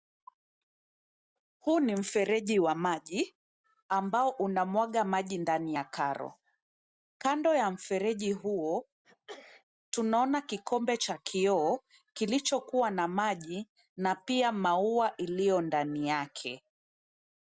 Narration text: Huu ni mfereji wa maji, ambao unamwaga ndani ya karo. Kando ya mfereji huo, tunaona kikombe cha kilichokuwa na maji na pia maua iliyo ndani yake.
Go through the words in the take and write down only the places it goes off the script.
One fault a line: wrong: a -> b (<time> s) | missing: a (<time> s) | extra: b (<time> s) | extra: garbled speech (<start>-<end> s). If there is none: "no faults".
extra: maji (5.0 s)
extra: kioo (11.2 s)